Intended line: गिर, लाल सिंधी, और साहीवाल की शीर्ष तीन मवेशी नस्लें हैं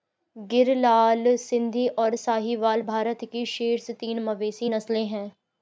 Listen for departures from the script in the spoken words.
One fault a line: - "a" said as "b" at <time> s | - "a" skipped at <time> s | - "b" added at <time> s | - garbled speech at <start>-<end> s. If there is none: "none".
- "भारत" added at 2.8 s